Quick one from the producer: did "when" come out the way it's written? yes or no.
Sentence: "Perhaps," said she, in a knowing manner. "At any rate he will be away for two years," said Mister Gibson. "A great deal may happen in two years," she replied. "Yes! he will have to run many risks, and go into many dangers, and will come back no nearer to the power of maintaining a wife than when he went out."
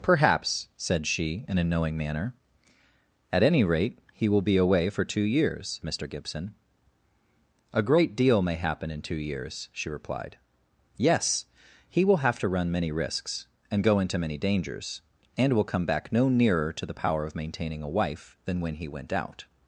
yes